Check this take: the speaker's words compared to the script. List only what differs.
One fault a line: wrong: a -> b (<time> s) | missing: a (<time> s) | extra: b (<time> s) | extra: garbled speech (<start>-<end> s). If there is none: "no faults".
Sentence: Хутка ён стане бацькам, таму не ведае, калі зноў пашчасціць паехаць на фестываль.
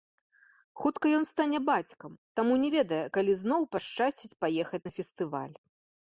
no faults